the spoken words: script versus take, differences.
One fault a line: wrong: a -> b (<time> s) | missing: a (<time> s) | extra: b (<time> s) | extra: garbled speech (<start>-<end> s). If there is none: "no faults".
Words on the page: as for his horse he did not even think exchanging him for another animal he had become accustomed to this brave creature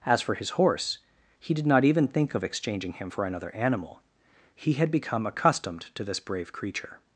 extra: of (2.3 s)